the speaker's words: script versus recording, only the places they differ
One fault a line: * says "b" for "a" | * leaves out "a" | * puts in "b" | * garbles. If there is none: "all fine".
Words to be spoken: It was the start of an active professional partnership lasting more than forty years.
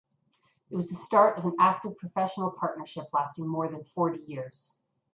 all fine